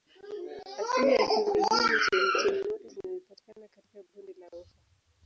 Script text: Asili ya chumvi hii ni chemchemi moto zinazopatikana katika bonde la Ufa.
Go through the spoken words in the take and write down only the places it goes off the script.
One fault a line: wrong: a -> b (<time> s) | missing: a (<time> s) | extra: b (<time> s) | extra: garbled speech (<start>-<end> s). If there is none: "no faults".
no faults